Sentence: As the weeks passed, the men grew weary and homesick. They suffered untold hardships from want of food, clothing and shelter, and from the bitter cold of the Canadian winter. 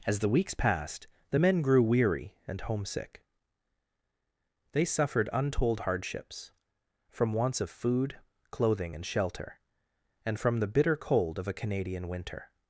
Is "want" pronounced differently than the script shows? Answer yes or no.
yes